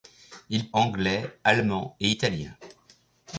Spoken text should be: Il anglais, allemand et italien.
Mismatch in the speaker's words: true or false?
false